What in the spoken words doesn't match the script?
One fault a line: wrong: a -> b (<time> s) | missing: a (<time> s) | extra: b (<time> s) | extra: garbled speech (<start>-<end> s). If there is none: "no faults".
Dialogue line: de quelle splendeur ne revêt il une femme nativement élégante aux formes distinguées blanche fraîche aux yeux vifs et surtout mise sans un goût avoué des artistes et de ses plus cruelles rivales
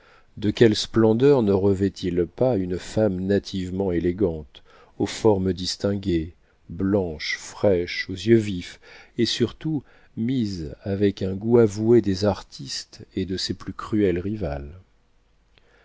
extra: pas (2.2 s)
wrong: sans -> avec (10.8 s)